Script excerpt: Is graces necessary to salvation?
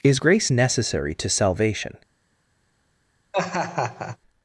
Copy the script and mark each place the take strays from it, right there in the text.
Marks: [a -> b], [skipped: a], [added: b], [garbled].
Is [graces -> grace] necessary to salvation?